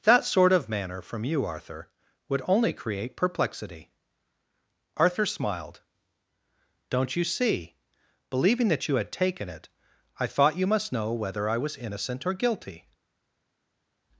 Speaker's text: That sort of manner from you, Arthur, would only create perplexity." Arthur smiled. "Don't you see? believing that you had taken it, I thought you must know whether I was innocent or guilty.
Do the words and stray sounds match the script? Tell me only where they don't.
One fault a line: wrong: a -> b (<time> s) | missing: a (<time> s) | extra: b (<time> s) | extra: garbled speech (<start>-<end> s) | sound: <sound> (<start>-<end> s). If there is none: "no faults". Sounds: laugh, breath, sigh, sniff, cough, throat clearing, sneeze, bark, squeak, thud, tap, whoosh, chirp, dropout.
no faults